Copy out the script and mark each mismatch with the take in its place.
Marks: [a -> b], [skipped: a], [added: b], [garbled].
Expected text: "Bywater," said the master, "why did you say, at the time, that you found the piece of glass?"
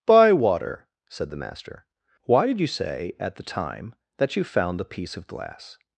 "Bywater," said the master, "why did you say, at the time, that you found the piece of glass?"